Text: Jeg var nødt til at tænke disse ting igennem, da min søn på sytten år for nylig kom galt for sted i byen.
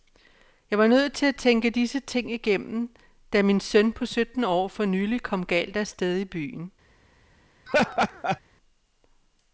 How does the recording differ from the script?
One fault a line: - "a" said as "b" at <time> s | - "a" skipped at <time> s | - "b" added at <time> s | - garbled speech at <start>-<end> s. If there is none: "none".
- "for" said as "af" at 5.8 s